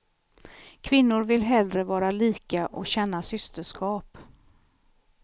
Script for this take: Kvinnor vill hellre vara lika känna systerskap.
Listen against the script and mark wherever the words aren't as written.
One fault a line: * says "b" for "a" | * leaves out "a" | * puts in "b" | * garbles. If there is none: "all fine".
* puts in "och"